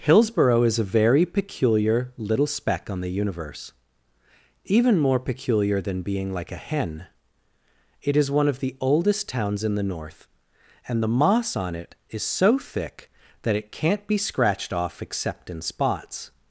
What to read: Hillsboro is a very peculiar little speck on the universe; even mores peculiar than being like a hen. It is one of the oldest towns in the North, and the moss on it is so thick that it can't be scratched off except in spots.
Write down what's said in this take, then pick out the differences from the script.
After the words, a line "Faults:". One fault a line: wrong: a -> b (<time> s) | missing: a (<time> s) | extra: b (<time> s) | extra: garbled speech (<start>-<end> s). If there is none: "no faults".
Hillsboro is a very peculiar little speck on the universe; even more peculiar than being like a hen. It is one of the oldest towns in the North, and the moss on it is so thick that it can't be scratched off except in spots.
Faults:
wrong: mores -> more (5.0 s)